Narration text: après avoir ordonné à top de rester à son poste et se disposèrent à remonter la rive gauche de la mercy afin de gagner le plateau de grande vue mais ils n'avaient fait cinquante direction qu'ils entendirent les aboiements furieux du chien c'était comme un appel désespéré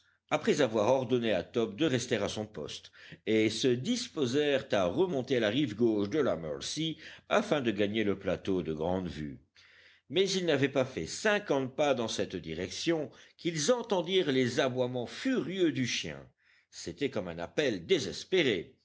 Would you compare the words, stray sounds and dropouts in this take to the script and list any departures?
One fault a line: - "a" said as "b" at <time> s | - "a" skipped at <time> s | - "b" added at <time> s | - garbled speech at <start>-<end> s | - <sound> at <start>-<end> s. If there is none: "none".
- "pas" added at 10.7 s
- "pas dans cette" added at 11.8 s